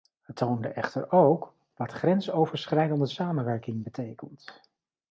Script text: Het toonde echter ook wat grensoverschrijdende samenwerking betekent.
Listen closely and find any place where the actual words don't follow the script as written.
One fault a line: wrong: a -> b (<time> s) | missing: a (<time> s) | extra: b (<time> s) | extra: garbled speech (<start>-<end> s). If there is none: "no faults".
no faults